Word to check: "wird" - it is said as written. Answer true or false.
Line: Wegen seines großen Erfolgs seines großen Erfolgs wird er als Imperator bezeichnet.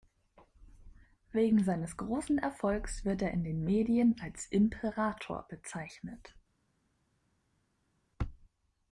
false